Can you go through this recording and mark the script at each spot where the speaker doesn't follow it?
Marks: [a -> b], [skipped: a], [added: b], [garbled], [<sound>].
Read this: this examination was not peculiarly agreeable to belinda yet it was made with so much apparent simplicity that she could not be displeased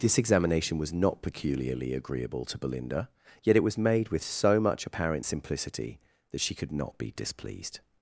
this examination was not peculiarly agreeable to belinda yet it was made with so much apparent simplicity that she could not be displeased